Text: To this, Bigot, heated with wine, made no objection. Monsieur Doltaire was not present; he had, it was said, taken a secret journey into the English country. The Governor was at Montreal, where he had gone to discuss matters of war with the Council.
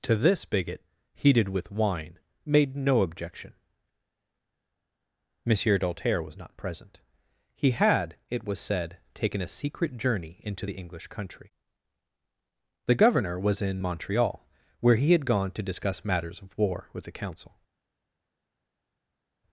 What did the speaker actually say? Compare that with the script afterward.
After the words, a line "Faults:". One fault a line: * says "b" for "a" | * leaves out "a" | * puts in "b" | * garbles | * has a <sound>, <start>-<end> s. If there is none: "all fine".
To this, Bigot, heated with wine, made no objection. Monsieur Doltaire was not present; he had, it was said, taken a secret journey into the English country. The Governor was in Montreal, where he had gone to discuss matters of war with the Council.
Faults:
* says "in" for "at"